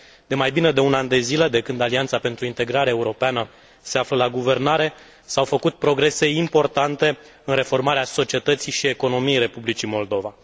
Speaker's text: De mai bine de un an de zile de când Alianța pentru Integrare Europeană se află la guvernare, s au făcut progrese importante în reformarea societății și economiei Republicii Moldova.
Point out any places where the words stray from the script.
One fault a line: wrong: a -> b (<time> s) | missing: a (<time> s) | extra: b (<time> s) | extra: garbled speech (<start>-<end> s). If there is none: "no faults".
no faults